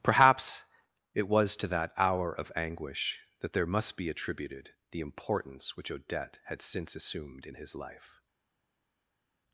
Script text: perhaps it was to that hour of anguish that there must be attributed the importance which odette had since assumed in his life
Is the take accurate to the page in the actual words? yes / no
yes